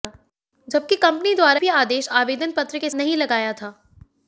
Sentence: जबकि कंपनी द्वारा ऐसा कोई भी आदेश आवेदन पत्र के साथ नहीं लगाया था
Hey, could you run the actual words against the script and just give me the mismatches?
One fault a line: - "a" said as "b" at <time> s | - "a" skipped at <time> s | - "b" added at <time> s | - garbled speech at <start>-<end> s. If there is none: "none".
- "ऐसा कोई" skipped at 1.6 s
- "साथ" skipped at 2.9 s